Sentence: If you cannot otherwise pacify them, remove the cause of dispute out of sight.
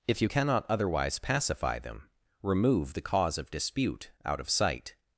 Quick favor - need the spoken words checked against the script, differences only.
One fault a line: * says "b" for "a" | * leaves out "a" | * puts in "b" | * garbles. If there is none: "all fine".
all fine